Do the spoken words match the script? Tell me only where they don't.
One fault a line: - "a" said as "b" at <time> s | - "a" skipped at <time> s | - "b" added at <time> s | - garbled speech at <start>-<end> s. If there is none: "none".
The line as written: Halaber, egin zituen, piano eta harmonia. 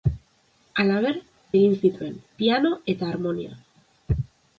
none